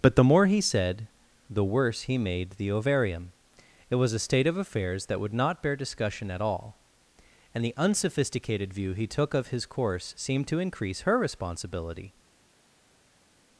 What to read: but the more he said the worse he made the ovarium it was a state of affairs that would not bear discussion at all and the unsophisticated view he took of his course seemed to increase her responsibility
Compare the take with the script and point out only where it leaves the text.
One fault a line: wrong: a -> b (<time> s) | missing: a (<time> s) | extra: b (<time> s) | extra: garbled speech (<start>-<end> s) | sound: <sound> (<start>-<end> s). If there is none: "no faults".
no faults